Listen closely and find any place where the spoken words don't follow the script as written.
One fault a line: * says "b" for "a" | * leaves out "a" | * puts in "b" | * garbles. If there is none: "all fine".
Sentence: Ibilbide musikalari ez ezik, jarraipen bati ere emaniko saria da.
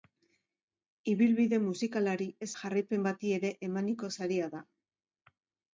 * leaves out "ezik"